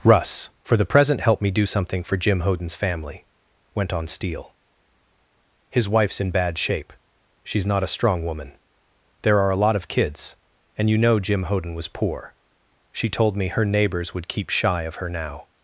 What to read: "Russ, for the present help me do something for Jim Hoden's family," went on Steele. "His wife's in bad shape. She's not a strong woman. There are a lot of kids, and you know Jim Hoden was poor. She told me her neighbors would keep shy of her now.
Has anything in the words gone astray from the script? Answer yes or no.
no